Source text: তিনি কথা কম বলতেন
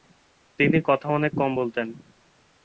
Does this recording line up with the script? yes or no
no